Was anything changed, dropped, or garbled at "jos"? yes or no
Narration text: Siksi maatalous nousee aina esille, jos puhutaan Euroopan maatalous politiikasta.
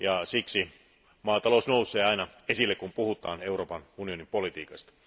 yes